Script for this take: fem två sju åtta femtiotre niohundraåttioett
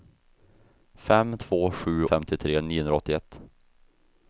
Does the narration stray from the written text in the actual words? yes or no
yes